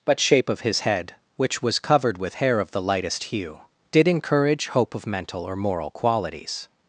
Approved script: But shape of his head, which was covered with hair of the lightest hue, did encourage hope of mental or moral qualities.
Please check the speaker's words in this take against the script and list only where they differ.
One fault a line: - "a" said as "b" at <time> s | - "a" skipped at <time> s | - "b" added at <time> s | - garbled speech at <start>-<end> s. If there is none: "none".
none